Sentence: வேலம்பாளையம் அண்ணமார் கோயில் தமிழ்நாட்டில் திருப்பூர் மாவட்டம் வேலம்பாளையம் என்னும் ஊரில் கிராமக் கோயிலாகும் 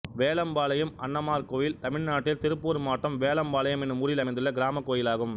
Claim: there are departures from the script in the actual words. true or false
true